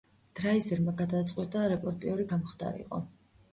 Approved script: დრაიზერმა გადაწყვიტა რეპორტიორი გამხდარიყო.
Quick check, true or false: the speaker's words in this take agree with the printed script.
true